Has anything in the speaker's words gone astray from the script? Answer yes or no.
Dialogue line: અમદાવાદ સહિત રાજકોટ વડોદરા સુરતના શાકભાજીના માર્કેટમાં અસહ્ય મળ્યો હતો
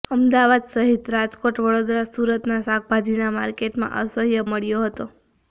no